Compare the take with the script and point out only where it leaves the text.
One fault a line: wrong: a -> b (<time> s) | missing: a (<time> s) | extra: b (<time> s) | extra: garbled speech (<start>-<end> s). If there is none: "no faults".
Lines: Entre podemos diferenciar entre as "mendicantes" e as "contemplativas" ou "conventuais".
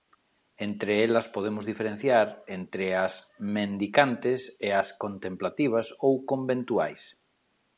extra: elas (1.1 s)